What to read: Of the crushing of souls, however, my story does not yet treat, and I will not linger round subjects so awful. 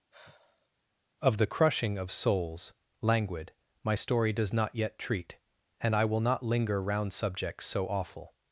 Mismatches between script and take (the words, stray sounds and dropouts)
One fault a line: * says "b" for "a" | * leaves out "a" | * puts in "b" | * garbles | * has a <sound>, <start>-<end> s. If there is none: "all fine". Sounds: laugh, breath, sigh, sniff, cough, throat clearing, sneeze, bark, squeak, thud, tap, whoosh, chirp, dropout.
* has a sigh, 0.1-0.7 s
* says "languid" for "however"